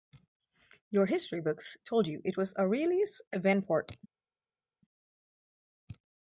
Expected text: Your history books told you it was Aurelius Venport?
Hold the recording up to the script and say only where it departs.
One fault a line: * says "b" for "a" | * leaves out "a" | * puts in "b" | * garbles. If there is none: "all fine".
all fine